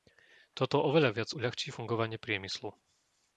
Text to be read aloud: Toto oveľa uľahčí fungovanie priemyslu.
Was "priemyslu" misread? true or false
false